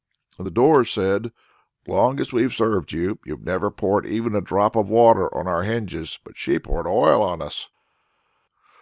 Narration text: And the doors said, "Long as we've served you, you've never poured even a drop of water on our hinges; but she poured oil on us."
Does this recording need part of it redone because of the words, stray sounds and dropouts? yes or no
no